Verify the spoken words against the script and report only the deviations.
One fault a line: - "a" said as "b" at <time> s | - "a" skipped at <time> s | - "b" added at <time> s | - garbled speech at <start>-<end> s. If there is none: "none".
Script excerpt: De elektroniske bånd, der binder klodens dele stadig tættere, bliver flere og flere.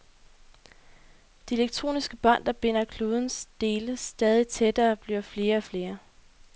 none